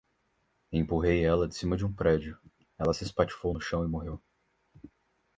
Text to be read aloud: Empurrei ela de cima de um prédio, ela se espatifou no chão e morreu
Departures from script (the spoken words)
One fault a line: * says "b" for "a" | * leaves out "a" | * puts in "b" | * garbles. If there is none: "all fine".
all fine